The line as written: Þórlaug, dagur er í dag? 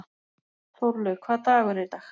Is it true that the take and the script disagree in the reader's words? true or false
true